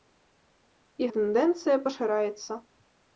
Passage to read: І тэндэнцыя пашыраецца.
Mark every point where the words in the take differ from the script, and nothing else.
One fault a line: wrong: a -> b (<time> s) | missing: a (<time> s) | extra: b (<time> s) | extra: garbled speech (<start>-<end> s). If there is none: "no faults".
no faults